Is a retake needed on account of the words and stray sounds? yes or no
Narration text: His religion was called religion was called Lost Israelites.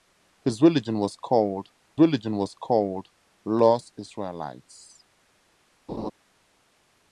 yes